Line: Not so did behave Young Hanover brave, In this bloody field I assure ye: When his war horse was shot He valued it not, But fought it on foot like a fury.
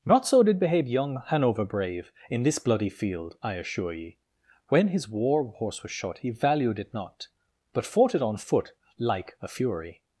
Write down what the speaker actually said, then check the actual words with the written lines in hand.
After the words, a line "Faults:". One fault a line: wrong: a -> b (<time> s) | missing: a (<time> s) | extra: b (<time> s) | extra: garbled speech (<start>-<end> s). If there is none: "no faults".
Not so did behave Young Hanover brave, In this bloody field I assure ye: When his war horse was shot He valued it not, But fought it on foot like a fury.
Faults:
no faults